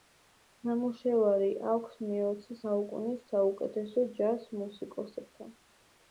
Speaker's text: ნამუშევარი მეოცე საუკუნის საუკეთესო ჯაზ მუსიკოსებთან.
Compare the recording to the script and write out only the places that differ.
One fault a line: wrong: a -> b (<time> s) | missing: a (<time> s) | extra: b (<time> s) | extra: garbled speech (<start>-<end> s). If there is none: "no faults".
extra: აქვს (1.7 s)